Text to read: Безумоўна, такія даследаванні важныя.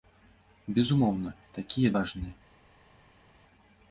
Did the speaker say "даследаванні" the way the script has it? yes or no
no